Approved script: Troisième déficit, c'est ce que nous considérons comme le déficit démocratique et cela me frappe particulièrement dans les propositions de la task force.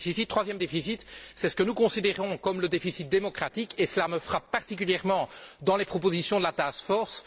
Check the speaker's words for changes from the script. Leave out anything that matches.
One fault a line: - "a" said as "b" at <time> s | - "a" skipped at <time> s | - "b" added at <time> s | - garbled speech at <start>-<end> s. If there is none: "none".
none